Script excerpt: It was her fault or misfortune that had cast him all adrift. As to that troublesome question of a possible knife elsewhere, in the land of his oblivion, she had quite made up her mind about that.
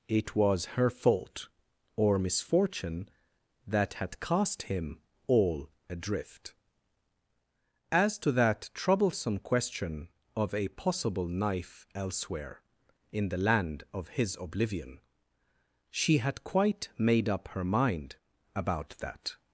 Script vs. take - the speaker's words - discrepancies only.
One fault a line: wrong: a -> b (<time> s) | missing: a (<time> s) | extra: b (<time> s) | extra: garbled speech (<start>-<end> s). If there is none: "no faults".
no faults